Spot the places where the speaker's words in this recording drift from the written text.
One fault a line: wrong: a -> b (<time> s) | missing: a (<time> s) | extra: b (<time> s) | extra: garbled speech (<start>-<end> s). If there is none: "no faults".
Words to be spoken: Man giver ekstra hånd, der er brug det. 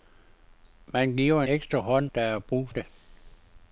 no faults